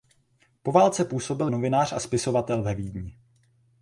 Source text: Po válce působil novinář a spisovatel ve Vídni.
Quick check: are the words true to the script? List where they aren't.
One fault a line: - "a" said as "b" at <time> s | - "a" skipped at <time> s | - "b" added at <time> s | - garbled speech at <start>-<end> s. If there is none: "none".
none